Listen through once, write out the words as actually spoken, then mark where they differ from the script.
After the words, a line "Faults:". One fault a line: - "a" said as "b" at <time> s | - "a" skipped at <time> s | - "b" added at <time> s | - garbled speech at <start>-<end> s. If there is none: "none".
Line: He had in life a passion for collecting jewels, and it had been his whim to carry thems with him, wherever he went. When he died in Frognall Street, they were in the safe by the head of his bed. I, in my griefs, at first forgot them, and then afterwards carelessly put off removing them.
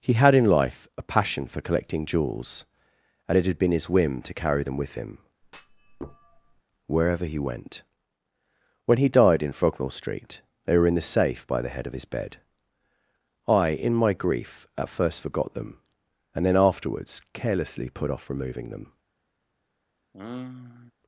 He had in life a passion for collecting jewels, and it had been his whim to carry them with him, wherever he went. When he died in Frognall Street, they were in the safe by the head of his bed. I, in my grief, at first forgot them, and then afterwards carelessly put off removing them.
Faults:
- "thems" said as "them" at 4.6 s
- "griefs" said as "grief" at 14.1 s